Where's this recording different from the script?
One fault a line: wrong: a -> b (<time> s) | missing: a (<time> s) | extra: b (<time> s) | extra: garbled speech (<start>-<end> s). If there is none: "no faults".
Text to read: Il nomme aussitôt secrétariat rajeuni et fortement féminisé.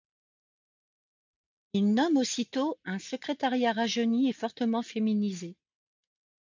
extra: un (2.9 s)